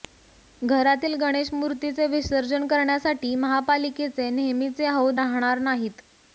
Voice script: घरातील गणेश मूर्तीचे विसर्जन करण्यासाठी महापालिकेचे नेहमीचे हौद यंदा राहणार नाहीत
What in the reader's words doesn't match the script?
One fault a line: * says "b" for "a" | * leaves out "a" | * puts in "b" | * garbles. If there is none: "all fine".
* leaves out "यंदा"